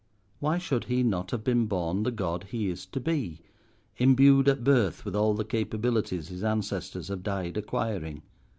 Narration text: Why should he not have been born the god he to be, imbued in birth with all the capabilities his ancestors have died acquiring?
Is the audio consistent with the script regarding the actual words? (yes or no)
no